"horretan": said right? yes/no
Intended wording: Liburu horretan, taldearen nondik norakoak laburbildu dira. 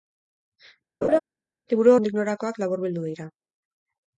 no